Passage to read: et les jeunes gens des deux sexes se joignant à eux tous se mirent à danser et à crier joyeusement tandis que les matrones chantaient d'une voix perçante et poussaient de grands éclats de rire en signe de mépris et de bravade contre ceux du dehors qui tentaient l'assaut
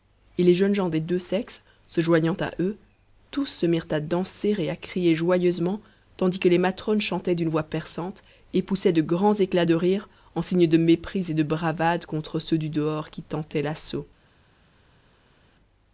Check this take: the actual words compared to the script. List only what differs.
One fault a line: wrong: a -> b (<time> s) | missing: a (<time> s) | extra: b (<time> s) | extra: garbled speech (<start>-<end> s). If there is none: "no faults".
no faults